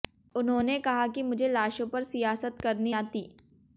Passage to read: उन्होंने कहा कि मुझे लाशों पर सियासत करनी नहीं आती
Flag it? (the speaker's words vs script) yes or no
yes